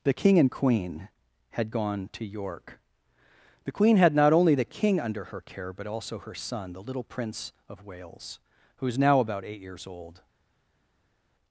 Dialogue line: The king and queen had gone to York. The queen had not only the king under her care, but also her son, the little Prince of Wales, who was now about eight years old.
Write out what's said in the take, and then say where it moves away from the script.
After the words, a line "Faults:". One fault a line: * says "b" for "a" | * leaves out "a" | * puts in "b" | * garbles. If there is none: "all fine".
The king and queen had gone to York. The queen had not only the king under her care, but also her son, the little Prince of Wales, who is now about eight years old.
Faults:
* says "is" for "was"